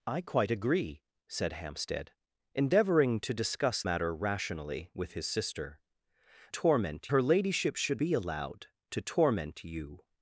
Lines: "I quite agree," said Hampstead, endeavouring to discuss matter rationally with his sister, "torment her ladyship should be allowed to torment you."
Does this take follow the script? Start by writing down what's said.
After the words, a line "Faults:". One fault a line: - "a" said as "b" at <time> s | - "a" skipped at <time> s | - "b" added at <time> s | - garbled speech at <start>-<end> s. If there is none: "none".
"I quite agree," said Hampstead, endeavouring to discuss matter rationally with his sister, "torment her ladyship should be allowed to torment you."
Faults:
none